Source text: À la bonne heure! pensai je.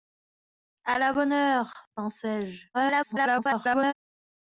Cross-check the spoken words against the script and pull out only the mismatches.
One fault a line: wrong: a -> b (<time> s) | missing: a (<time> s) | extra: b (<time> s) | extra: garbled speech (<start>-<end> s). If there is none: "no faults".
extra: garbled speech (2.7-3.9 s)